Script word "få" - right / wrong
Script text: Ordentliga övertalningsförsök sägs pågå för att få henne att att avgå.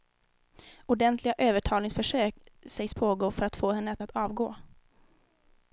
right